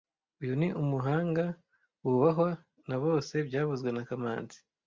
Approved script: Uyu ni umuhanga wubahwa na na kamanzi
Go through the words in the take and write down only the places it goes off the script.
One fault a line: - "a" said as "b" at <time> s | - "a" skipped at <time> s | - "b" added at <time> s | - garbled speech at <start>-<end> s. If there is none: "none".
- "bose byavuzwe" added at 3.0 s